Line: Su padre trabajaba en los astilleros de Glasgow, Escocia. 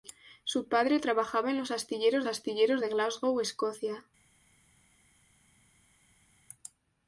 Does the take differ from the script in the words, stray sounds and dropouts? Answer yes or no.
yes